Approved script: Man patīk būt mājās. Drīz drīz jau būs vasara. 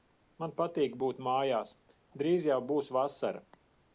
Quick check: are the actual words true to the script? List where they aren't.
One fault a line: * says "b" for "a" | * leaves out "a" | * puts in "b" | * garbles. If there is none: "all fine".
* leaves out "drīz"